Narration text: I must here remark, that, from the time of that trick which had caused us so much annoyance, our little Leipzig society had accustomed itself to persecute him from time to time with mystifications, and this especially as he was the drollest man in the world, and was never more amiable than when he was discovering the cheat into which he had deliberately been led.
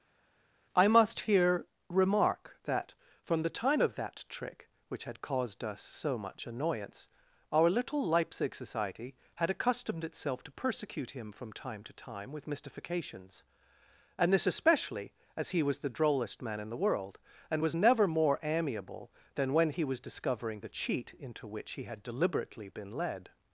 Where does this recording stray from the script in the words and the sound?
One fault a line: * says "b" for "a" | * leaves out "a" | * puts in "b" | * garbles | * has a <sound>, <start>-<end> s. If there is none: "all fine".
all fine